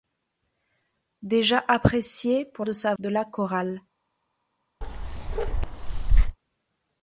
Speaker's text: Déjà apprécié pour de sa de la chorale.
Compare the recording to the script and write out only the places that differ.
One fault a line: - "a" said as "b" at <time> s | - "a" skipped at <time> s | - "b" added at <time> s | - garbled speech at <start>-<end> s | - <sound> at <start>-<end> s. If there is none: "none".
- bark at 4.8-6.4 s